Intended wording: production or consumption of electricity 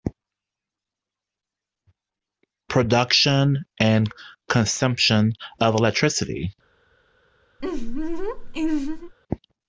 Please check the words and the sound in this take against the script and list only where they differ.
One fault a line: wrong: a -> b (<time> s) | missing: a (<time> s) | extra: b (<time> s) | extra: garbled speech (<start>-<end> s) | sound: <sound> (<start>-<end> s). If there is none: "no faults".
wrong: or -> and (3.8 s)
sound: laugh (7.6-9.1 s)